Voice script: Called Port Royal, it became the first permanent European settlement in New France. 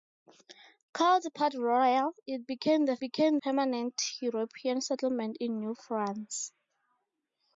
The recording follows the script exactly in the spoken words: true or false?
false